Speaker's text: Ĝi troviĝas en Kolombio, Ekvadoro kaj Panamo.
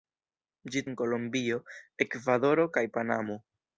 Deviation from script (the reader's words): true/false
true